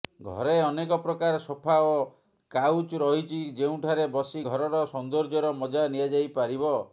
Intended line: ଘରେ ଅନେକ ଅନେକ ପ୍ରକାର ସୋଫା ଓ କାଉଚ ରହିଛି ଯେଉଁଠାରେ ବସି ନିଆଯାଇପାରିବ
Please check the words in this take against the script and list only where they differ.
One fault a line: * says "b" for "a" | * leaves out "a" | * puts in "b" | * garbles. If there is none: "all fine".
* leaves out "ଅନେକ"
* puts in "ଘରର ସୌନ୍ଦର୍ଯ୍ୟର ମଜା"